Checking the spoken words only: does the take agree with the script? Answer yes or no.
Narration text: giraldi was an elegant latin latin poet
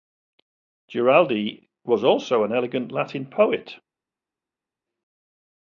no